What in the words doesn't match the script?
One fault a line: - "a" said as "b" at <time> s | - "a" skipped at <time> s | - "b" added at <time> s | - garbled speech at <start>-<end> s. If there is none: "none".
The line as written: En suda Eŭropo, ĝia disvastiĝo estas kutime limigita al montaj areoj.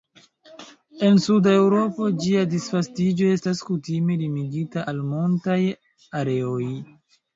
none